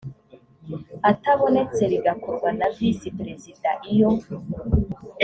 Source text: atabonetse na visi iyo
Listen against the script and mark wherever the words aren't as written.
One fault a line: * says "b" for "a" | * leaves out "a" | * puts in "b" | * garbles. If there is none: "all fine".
* puts in "bigakorwa"
* puts in "perezida"